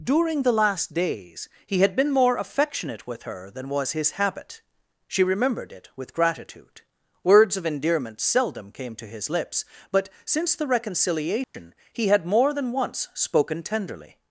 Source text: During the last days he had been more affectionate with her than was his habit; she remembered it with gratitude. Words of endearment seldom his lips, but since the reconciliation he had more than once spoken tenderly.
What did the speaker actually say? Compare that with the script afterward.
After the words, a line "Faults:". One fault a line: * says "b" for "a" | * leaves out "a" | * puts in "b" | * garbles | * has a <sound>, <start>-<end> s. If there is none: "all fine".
During the last days he had been more affectionate with her than was his habit; she remembered it with gratitude. Words of endearment seldom came to his lips, but since the reconciliation he had more than once spoken tenderly.
Faults:
* puts in "came to"
* has a dropout, 11.4-11.5 s